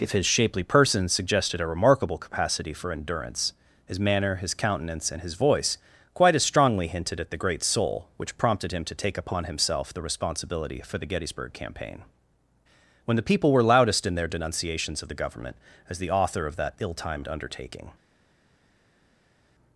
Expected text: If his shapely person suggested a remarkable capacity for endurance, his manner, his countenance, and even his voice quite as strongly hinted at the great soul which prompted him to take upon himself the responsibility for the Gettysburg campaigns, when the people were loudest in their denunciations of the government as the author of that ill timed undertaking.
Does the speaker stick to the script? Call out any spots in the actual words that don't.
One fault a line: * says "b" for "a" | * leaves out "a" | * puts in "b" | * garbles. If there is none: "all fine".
* leaves out "even"
* says "campaign" for "campaigns"